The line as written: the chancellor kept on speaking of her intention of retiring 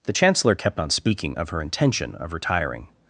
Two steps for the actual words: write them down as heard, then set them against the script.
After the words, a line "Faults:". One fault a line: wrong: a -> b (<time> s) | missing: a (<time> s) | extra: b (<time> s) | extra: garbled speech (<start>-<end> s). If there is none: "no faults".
the chancellor kept on speaking of her intention of retiring
Faults:
no faults